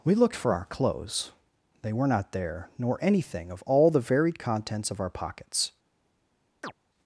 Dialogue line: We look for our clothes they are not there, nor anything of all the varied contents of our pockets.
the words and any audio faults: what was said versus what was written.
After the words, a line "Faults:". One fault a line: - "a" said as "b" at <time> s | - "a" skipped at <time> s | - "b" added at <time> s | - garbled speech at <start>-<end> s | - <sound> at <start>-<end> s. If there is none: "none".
We looked for our clothes they were not there, nor anything of all the varied contents of our pockets.
Faults:
- "look" said as "looked" at 0.1 s
- "are" said as "were" at 1.9 s
- chirp at 6.6-6.7 s